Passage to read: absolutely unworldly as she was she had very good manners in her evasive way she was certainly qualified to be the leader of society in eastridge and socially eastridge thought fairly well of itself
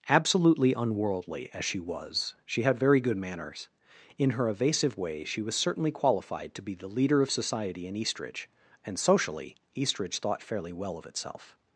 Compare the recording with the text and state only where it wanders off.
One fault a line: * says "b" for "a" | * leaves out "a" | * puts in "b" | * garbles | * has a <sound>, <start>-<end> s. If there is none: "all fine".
all fine